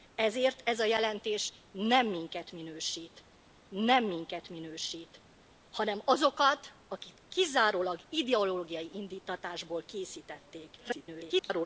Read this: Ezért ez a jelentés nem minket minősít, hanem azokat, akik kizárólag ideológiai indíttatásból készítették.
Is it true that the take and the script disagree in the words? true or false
true